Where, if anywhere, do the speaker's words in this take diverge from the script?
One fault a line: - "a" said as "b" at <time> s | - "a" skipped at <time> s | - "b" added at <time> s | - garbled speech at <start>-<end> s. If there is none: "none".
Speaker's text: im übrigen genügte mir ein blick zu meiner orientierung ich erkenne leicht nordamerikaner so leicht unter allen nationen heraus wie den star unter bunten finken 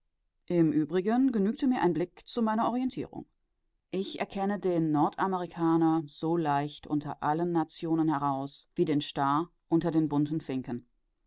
- "leicht" said as "den" at 4.6 s
- "den" added at 9.9 s